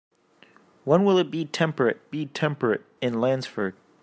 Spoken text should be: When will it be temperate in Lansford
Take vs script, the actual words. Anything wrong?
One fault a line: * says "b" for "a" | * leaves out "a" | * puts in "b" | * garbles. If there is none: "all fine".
* puts in "be temperate"